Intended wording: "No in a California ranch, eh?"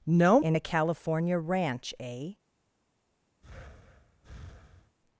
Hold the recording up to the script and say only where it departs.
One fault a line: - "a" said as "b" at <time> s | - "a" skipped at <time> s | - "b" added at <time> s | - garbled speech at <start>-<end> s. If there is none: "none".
none